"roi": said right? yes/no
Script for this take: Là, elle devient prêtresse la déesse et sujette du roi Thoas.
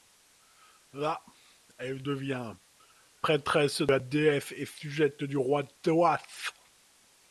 yes